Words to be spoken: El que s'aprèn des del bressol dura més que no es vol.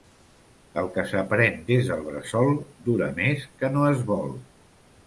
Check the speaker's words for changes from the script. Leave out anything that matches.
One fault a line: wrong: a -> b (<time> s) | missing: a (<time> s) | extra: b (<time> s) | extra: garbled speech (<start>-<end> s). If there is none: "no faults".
no faults